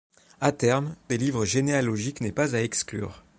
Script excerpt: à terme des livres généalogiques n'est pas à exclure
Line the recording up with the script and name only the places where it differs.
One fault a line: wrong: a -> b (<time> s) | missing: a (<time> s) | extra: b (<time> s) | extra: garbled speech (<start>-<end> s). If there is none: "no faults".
no faults